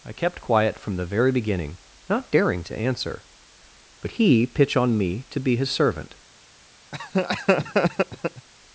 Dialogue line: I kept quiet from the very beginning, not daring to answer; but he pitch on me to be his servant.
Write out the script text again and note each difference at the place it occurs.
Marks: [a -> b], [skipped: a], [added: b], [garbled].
I kept quiet from the very beginning, not daring to answer; but he pitch on me to be his servant.